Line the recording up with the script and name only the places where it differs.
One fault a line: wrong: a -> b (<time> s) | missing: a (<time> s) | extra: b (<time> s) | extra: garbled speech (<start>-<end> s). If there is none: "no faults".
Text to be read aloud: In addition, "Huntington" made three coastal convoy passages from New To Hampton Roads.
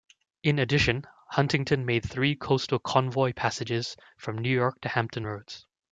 extra: York (4.5 s)